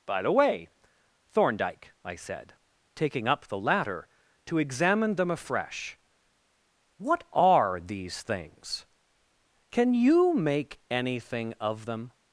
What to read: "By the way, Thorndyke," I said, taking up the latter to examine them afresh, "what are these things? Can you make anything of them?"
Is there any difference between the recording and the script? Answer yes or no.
no